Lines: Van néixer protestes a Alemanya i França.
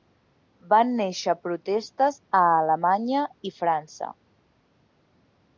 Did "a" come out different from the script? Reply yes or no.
no